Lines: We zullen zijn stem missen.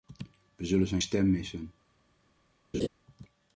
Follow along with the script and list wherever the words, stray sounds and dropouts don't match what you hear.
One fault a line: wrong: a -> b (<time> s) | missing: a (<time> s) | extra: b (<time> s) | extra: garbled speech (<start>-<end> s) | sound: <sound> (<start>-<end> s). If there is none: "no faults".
sound: laugh (2.7-2.9 s)